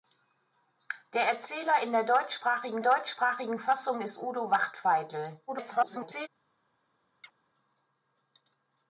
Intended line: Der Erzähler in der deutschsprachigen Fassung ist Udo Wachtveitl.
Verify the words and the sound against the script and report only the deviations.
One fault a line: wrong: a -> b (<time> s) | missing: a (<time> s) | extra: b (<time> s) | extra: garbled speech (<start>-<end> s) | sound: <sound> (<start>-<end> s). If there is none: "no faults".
extra: deutschsprachigen (2.8 s)
extra: garbled speech (5.5-6.3 s)
sound: chirp (7.2-7.3 s)